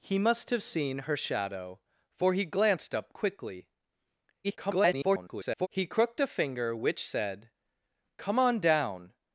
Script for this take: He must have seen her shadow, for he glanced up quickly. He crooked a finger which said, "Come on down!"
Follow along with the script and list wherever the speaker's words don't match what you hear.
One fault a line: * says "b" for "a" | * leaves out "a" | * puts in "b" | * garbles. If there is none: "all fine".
* garbles